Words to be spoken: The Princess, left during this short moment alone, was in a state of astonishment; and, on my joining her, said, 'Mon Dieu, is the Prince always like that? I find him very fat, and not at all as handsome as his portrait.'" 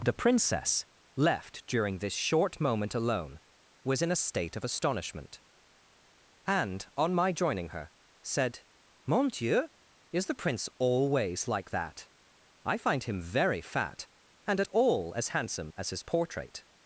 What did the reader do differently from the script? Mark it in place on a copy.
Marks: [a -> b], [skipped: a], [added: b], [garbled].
The Princess, left during this short moment alone, was in a state of astonishment; and, on my joining her, said, 'Mon Dieu, is the Prince always like that? I find him very fat, and [skipped: not] at all as handsome as his portrait.'"